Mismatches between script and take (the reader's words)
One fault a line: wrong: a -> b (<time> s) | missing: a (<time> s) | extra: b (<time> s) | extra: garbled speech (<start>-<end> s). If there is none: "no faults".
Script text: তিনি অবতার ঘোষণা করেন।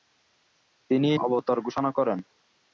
no faults